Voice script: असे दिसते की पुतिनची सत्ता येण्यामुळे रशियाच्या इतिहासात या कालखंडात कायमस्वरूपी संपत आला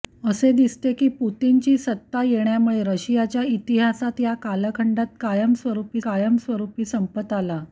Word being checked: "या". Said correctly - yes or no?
yes